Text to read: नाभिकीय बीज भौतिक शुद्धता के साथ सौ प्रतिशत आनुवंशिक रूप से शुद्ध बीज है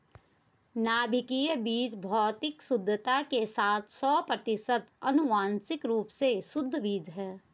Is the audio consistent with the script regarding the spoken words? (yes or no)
yes